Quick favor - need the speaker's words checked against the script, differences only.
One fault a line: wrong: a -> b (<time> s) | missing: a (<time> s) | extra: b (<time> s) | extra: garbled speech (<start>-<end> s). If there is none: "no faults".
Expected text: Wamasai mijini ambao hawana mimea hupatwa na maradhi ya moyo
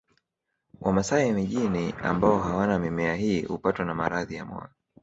extra: hii (3.1 s)